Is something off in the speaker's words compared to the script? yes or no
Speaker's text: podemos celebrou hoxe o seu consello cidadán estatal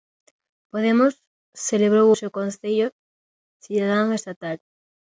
yes